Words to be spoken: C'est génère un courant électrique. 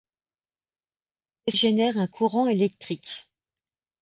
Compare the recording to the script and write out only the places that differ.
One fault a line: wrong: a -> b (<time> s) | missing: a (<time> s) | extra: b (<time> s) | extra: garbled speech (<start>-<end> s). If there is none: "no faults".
no faults